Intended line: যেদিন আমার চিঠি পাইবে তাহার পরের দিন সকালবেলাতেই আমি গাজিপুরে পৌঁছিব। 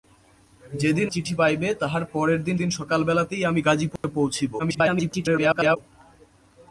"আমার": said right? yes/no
no